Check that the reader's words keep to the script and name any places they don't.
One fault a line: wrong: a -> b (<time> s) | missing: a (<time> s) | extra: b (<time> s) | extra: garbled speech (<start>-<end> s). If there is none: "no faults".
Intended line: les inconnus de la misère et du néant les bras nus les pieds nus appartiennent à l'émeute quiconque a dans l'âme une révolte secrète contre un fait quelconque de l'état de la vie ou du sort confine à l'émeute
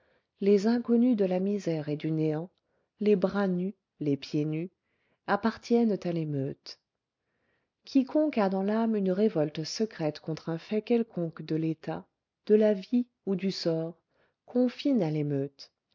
no faults